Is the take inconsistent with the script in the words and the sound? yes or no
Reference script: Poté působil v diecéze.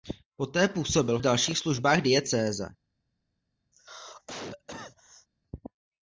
yes